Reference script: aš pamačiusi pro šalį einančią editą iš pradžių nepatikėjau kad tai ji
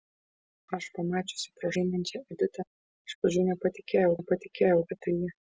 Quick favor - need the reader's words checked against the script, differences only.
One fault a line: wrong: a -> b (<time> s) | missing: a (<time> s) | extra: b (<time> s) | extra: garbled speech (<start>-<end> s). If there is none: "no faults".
missing: šalį (1.7 s)
extra: nepatikėjau (4.2 s)